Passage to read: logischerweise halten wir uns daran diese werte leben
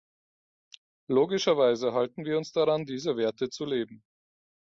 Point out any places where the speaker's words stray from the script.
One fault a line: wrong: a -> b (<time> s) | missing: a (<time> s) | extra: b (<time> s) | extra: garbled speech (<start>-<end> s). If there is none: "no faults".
extra: zu (3.5 s)